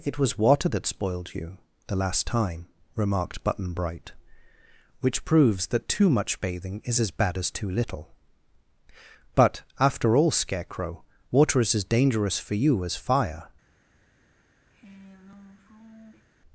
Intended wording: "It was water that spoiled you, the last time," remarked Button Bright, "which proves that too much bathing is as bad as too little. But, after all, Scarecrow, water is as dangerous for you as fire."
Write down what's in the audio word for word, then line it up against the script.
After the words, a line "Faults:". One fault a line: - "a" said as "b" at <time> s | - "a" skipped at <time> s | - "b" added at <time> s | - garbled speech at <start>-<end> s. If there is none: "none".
"It was water that spoiled you, the last time," remarked Button Bright, "which proves that too much bathing is as bad as too little. But, after all, Scarecrow, water is as dangerous for you as fire."
Faults:
none